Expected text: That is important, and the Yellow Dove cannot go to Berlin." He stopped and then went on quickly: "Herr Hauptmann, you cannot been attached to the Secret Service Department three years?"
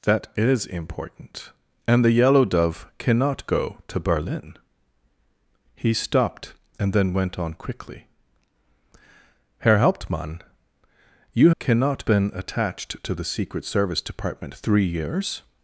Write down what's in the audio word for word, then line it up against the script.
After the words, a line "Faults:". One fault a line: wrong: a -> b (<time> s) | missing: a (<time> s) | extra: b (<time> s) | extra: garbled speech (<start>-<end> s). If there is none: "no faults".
That is important, and the Yellow Dove cannot go to Berlin." He stopped and then went on quickly: "Herr Hauptmann, you cannot been attached to the Secret Service Department three years?"
Faults:
no faults